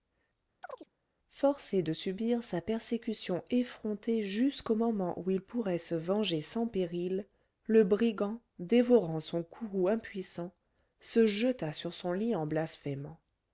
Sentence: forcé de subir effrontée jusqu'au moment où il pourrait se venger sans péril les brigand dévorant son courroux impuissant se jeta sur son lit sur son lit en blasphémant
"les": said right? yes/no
no